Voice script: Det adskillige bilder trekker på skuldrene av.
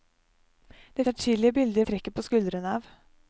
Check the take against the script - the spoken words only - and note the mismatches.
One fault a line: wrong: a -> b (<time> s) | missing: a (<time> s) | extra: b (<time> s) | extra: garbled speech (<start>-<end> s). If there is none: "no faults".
no faults